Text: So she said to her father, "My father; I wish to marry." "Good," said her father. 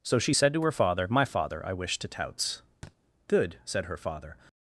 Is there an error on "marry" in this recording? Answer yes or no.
yes